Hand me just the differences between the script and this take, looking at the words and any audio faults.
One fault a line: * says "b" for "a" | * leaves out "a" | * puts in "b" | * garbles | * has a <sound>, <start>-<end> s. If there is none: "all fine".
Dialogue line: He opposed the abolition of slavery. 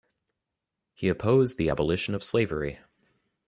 all fine